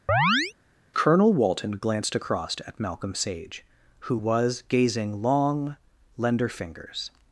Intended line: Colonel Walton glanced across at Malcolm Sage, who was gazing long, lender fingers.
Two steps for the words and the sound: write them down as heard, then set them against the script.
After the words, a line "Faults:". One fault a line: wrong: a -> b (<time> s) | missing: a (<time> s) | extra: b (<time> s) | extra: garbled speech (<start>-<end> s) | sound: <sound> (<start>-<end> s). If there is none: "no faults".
Colonel Walton glanced across at Malcolm Sage, who was gazing long, lender fingers.
Faults:
sound: chirp (0.1-0.5 s)